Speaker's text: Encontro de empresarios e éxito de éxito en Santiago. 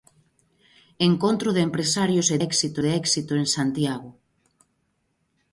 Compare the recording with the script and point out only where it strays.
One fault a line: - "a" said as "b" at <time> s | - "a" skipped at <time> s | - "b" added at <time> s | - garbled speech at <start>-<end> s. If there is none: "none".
none